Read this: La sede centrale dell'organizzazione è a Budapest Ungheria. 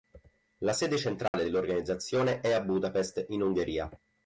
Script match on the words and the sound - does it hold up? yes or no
no